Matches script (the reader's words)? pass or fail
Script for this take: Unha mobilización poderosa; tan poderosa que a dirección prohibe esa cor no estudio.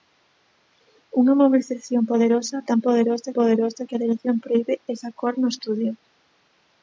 fail